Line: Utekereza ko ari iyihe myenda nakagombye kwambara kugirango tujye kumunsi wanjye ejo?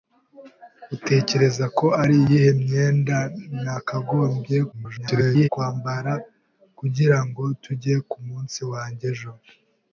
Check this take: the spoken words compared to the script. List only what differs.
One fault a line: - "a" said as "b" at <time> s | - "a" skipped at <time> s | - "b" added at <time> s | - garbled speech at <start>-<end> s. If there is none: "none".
- garbled speech at 4.7-5.5 s